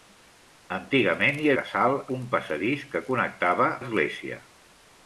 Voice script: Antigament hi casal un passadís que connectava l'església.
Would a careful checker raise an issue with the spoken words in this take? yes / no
no